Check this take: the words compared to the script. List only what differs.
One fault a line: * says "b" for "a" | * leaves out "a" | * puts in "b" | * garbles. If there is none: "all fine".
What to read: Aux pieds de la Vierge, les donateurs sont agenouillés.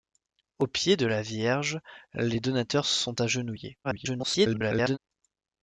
* garbles